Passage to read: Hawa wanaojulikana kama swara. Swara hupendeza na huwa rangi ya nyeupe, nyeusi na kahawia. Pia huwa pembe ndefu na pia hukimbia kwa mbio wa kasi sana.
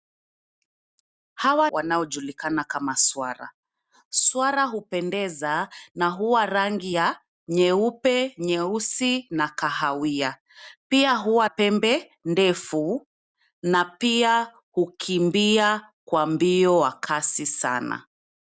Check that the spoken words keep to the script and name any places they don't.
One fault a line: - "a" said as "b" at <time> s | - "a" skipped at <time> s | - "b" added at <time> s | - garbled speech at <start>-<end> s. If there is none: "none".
none